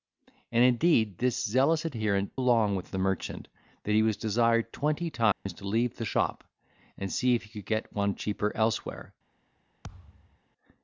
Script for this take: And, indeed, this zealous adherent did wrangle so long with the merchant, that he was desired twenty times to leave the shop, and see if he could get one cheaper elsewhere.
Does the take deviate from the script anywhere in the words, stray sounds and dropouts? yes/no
yes